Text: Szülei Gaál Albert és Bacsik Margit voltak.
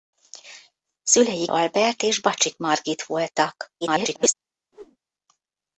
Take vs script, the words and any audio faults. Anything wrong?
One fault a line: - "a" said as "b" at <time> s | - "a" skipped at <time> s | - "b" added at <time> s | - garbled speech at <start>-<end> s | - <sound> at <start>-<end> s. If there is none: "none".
- "Gaál" skipped at 1.4 s
- garbled speech at 3.8-4.3 s
- whoosh at 4.7-5.0 s